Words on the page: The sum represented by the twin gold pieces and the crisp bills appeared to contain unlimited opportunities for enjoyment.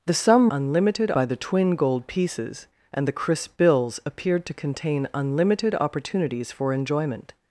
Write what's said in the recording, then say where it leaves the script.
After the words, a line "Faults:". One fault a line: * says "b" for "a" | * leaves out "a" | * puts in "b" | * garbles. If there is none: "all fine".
The sum unlimited by the twin gold pieces and the crisp bills appeared to contain unlimited opportunities for enjoyment.
Faults:
* says "unlimited" for "represented"